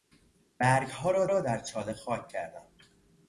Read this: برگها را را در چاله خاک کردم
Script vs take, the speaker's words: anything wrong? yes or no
no